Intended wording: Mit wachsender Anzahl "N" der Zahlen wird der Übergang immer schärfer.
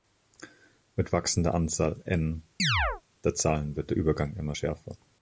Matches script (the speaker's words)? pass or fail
pass